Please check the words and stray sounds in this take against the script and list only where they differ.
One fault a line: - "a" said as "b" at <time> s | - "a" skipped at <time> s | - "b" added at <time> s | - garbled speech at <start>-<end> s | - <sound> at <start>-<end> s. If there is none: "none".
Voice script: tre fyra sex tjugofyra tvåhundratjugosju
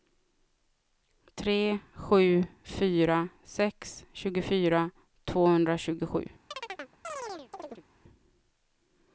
- "sju" added at 1.9 s
- chirp at 6.5-7.8 s